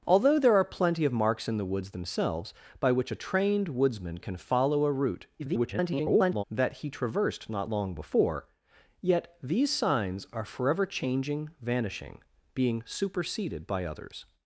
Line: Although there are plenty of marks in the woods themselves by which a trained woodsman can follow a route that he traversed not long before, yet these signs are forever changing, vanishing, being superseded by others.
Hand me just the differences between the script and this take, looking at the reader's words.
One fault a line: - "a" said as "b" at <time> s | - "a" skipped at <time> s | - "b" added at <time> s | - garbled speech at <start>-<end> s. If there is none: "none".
- garbled speech at 5.4-6.4 s